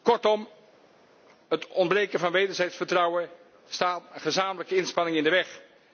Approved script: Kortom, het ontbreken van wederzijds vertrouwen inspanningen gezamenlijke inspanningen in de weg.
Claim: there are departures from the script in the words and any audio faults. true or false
true